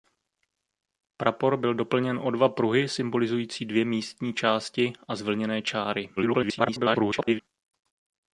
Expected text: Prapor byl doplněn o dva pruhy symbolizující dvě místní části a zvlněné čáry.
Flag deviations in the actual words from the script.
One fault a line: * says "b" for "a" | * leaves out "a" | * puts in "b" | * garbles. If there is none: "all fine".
* garbles